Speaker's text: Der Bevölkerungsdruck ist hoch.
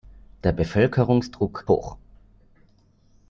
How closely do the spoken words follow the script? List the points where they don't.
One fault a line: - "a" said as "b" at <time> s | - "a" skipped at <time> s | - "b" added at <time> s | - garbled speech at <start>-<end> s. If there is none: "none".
- "ist" skipped at 1.6 s